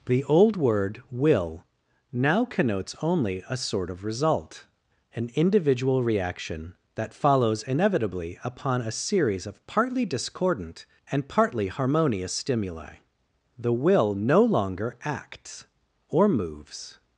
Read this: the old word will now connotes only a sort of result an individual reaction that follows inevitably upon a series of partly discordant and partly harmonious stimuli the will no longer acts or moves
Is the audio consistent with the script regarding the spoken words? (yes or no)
yes